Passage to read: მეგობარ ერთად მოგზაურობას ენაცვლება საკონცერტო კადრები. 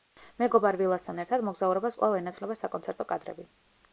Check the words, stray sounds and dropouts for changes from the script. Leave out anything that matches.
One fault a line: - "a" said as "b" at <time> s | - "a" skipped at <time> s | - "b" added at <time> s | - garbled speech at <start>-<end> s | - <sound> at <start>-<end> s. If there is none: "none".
- "ვილასთან" added at 0.8 s
- "კვლავ" added at 2.0 s